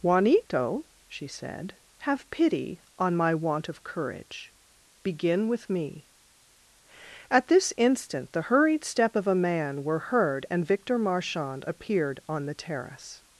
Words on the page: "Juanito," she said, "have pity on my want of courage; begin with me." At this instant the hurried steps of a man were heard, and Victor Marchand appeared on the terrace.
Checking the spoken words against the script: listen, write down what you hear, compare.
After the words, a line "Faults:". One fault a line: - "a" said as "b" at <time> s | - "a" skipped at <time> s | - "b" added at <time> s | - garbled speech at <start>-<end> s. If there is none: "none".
"Juanito," she said, "have pity on my want of courage; begin with me." At this instant the hurried step of a man were heard, and Victor Marchand appeared on the terrace.
Faults:
- "steps" said as "step" at 8.8 s